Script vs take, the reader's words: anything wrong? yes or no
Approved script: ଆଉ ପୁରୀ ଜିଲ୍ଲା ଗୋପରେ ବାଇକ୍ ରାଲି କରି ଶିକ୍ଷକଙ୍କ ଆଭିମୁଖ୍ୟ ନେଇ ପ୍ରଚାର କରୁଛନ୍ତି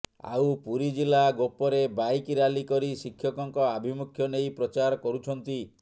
no